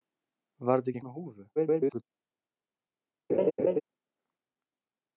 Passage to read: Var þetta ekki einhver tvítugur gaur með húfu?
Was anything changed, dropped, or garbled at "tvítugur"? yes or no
yes